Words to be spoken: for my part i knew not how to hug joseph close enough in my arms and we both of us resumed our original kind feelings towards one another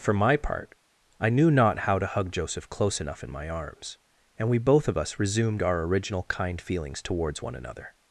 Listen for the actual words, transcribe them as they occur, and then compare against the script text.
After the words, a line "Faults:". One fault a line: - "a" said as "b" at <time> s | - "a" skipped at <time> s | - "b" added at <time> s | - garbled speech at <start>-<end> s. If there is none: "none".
for my part i knew not how to hug joseph close enough in my arms and we both of us resumed our original kind feelings towards one another
Faults:
none